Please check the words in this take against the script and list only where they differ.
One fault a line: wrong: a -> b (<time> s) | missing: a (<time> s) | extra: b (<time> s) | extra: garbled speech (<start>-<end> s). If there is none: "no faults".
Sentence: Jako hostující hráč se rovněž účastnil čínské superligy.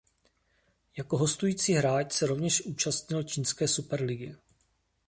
no faults